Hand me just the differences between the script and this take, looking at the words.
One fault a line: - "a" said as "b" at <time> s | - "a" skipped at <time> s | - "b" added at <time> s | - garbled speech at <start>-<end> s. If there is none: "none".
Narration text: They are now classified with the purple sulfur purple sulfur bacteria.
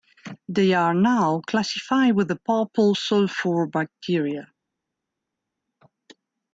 - "purple sulfur" skipped at 3.7 s